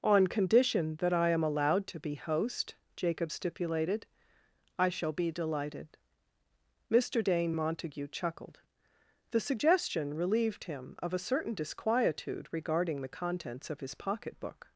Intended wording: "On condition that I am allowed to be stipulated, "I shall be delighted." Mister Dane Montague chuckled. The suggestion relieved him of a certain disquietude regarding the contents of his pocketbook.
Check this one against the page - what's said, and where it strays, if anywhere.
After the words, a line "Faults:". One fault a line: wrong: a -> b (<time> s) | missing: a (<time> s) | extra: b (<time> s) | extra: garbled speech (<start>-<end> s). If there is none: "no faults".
"On condition that I am allowed to be host," Jacob stipulated, "I shall be delighted." Mister Dane Montague chuckled. The suggestion relieved him of a certain disquietude regarding the contents of his pocketbook.
Faults:
extra: host Jacob (2.1 s)